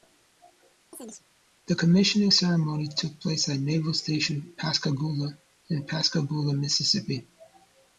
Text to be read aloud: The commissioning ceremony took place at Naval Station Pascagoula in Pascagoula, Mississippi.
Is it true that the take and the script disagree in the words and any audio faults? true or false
true